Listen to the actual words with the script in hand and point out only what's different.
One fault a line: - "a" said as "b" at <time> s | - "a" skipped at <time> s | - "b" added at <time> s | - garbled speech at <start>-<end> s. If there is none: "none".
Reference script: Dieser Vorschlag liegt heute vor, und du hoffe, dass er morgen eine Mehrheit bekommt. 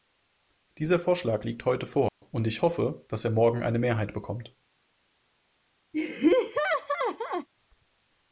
- "du" said as "ich" at 2.5 s